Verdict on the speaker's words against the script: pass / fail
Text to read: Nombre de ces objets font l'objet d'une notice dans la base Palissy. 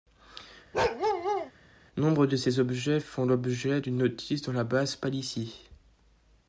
pass